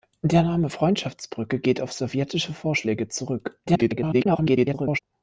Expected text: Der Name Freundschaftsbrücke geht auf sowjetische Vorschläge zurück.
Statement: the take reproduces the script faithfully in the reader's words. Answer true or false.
false